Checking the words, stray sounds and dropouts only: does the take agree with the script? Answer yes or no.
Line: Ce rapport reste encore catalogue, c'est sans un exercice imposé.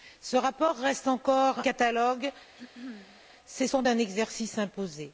no